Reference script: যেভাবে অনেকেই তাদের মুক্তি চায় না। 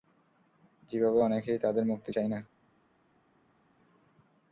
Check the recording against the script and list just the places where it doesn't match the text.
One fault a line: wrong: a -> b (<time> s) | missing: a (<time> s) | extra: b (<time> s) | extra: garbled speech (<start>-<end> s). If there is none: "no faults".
no faults